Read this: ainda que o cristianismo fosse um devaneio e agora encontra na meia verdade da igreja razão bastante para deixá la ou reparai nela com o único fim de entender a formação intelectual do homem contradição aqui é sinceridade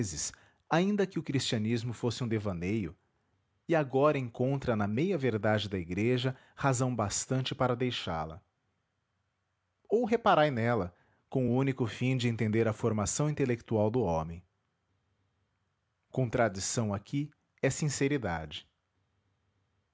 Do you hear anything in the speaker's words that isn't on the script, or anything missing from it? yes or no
no